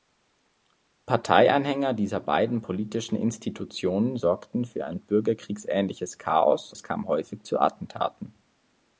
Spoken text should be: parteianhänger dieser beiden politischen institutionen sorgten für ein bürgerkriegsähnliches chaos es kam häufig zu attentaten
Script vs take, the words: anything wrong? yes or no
no